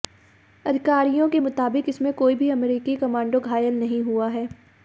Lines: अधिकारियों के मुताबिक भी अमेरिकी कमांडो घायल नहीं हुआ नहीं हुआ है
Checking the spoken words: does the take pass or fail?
fail